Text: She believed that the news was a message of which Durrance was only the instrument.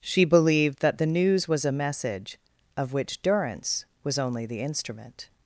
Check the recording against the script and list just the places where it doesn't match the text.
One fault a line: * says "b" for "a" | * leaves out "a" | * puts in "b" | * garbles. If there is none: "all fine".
all fine